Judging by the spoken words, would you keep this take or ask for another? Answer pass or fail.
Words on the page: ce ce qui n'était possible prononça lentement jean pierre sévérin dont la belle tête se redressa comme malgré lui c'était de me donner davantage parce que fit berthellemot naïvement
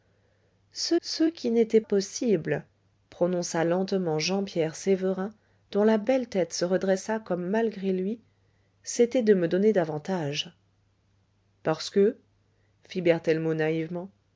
pass